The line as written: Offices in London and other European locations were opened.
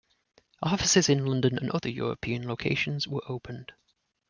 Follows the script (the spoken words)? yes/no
yes